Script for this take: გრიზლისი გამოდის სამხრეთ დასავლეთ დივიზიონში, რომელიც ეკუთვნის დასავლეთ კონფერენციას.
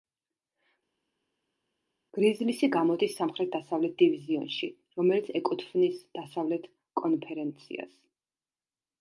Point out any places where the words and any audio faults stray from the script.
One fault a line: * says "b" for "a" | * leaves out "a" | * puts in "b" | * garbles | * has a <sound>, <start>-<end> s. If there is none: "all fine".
all fine